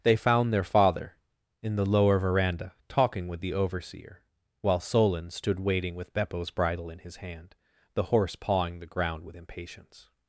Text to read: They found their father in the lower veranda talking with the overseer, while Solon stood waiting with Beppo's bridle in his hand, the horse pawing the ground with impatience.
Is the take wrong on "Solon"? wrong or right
right